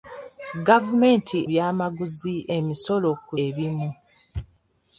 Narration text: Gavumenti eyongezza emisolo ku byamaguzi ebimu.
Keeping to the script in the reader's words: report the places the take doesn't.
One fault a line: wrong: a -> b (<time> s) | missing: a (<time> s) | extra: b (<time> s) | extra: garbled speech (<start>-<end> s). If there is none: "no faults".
wrong: eyongezza -> byamaguzi (1.5 s)
missing: byamaguzi (3.3 s)